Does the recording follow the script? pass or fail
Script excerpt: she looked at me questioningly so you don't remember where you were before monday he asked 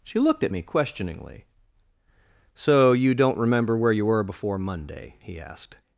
pass